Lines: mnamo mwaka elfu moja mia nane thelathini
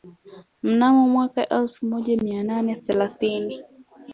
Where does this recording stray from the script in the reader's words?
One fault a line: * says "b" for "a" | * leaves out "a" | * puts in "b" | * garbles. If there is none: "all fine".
all fine